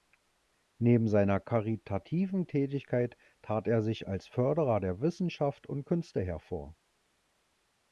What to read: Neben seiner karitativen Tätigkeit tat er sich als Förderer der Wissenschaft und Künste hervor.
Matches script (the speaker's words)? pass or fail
pass